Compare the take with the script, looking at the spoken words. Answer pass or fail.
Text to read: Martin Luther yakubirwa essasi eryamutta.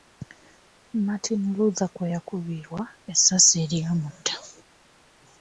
fail